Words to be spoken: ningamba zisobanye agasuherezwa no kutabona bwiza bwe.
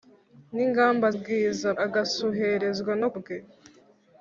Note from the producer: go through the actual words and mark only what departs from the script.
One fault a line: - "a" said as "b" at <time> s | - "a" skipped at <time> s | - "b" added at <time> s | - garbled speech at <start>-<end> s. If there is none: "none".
- "zisobanye" said as "bwiza" at 1.2 s
- "kutabona bwiza" skipped at 3.1 s